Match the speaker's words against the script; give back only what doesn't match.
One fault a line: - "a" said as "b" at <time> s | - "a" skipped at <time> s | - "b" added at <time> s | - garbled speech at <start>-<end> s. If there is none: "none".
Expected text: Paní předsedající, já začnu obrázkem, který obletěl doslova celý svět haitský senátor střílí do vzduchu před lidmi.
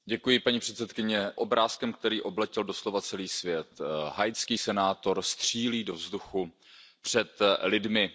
- "já začnu" skipped at 1.4 s